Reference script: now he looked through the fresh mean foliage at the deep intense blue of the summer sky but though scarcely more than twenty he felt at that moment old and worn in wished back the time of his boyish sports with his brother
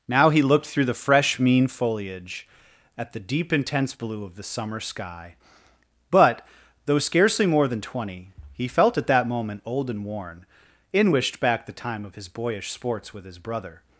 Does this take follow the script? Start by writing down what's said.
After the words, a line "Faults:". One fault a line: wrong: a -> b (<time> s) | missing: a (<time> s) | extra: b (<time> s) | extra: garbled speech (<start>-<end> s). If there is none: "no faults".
now he looked through the fresh mean foliage at the deep intense blue of the summer sky but though scarcely more than twenty he felt at that moment old and worn in wished back the time of his boyish sports with his brother
Faults:
no faults